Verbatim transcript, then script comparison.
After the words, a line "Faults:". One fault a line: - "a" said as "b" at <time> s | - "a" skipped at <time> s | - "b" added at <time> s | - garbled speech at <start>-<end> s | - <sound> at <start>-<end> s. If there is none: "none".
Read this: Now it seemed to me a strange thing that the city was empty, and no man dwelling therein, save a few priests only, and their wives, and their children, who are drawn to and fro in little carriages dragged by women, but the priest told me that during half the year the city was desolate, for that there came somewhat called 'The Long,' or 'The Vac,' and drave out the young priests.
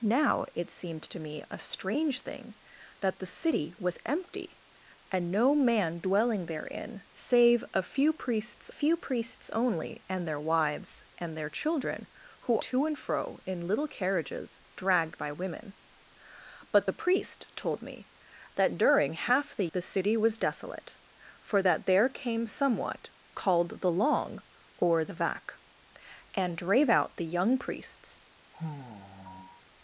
Now it seemed to me a strange thing that the city was empty, and no man dwelling therein, save a few priests few priests only, and their wives, and their children, who to and fro in little carriages dragged by women, but the priest told me that during half the the city was desolate, for that there came somewhat called 'The Long,' or 'The Vac,' and drave out the young priests.
Faults:
- "few priests" added at 8.7 s
- "are drawn" skipped at 12.6 s
- "year" skipped at 19.7 s
- sigh at 28.5-29.6 s